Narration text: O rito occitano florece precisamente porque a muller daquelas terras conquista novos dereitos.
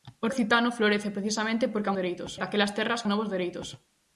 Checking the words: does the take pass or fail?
fail